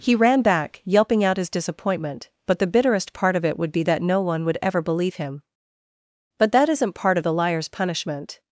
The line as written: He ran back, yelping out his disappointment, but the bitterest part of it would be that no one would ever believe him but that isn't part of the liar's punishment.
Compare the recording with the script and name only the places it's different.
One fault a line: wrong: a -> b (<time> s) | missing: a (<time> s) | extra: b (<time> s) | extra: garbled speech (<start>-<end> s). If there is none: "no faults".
no faults